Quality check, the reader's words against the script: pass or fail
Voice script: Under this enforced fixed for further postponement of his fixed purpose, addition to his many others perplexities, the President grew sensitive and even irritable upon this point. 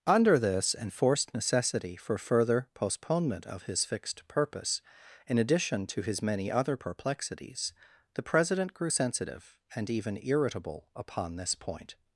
fail